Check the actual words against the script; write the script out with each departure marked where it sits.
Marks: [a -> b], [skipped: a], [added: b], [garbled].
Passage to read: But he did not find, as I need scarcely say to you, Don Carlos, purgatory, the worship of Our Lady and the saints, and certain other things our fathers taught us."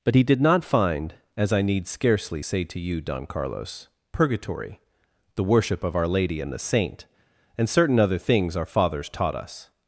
But he did not find, as I need scarcely say to you, Don Carlos, purgatory, the worship of Our Lady and the [saints, -> saint] and certain other things our fathers taught us."